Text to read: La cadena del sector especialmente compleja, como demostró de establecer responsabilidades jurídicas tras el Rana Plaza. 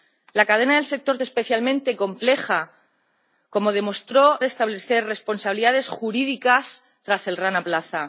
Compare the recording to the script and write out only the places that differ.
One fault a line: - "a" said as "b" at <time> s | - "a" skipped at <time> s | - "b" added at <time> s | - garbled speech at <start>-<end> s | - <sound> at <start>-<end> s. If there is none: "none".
none